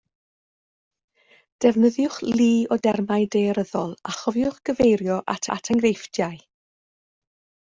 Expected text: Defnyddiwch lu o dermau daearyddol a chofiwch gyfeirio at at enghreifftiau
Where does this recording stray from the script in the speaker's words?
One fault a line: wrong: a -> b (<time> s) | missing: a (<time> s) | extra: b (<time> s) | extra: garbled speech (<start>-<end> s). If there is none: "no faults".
no faults